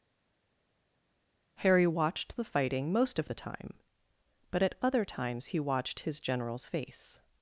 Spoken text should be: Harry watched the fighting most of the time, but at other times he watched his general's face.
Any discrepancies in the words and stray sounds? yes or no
no